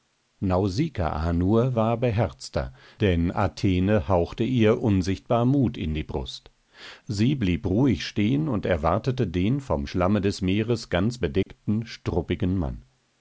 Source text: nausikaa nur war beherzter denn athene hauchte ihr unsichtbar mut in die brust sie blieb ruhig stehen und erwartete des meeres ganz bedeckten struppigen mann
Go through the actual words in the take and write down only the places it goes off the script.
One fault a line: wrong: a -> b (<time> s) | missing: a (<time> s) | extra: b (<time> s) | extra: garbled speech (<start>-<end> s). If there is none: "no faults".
extra: den vom schlamme (9.3 s)